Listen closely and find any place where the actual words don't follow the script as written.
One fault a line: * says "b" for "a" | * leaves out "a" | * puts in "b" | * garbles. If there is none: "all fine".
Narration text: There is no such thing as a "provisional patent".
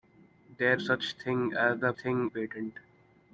* leaves out "is no"
* says "thing" for "provisional"